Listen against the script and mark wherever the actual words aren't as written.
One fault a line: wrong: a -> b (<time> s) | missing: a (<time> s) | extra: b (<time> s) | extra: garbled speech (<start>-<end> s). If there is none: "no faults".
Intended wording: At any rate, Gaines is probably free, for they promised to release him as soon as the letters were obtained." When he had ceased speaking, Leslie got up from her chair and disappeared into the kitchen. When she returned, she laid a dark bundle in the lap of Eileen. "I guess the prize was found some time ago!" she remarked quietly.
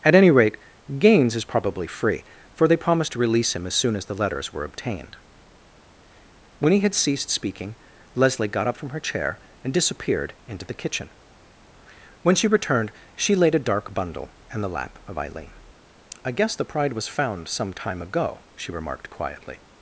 wrong: prize -> pride (16.6 s)